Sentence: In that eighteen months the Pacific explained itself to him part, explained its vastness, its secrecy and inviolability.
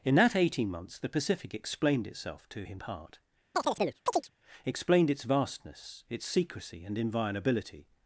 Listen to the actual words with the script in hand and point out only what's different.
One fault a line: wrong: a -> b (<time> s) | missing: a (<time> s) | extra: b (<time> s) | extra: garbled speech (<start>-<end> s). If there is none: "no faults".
no faults